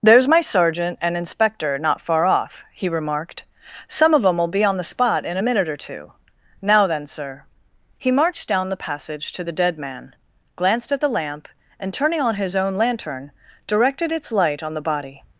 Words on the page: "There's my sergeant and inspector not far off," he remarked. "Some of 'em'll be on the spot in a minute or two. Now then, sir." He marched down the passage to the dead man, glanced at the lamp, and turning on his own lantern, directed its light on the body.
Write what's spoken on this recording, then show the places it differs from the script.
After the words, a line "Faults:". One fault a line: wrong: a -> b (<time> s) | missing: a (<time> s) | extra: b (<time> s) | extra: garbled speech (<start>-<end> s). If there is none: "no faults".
"There's my sergeant and inspector not far off," he remarked. "Some of 'em'll be on the spot in a minute or two. Now then, sir." He marched down the passage to the dead man, glanced at the lamp, and turning on his own lantern, directed its light on the body.
Faults:
no faults